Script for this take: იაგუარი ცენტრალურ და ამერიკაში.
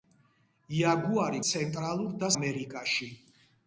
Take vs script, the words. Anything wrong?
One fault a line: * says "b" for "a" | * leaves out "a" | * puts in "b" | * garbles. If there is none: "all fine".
all fine